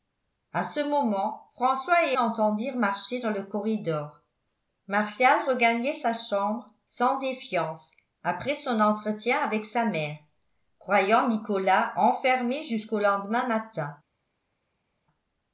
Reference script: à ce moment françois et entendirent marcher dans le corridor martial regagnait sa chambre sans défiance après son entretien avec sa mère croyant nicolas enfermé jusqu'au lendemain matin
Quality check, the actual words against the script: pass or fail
pass